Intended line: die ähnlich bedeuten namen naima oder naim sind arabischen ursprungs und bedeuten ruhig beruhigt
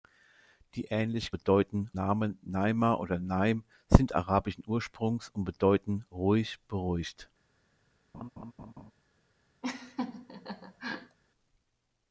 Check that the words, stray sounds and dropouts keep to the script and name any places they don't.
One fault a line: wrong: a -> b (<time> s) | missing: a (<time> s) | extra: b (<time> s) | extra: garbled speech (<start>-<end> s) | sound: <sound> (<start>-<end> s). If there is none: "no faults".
sound: laugh (8.1-8.9 s)
sound: laugh (9.6-11.2 s)